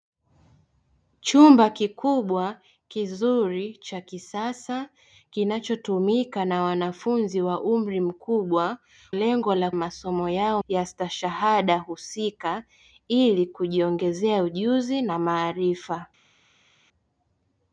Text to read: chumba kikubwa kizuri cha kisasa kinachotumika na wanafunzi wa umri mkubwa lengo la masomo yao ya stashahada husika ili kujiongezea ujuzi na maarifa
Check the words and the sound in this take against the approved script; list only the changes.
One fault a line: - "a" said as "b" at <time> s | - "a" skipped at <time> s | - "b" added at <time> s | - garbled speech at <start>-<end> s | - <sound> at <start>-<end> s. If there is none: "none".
none